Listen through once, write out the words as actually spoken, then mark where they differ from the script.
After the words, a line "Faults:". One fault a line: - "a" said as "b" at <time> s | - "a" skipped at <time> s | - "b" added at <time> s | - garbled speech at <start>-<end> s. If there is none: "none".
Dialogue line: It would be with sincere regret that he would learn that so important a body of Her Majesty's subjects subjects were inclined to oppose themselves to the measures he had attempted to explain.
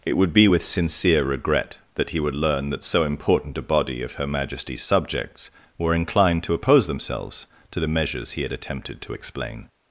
It would be with sincere regret that he would learn that so important a body of Her Majesty's subjects were inclined to oppose themselves to the measures he had attempted to explain.
Faults:
- "subjects" skipped at 5.5 s